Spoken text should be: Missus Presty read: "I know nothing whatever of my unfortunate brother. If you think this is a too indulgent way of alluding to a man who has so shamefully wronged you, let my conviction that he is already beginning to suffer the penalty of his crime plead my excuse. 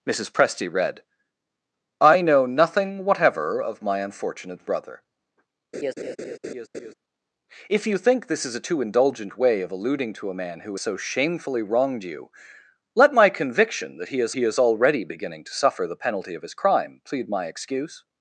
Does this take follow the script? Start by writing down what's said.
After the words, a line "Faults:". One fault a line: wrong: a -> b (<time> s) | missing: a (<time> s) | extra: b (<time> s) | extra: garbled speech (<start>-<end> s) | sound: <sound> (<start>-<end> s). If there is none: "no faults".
Missus Presty read: "I know nothing whatever of my unfortunate brother. If you think this is a too indulgent way of alluding to a man who so shamefully wronged you, let my conviction that he is he is already beginning to suffer the penalty of his crime plead my excuse.
Faults:
sound: laugh (5.7-6.9 s)
missing: has (10.7 s)
extra: he is (14.3 s)